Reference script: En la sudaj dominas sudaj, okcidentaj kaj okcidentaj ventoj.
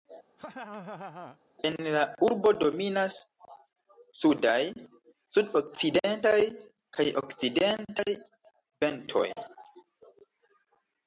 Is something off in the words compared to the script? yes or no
yes